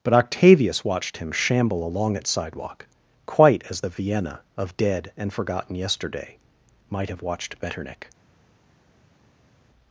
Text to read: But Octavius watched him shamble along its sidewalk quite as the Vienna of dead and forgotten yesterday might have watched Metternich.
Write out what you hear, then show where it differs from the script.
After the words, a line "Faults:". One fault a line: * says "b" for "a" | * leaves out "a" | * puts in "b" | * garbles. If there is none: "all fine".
But Octavius watched him shamble along its sidewalk quite as the Vienna of dead and forgotten yesterday might have watched Metternich.
Faults:
all fine